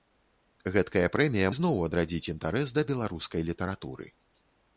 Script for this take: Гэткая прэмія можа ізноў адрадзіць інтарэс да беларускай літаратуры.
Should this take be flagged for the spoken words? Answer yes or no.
yes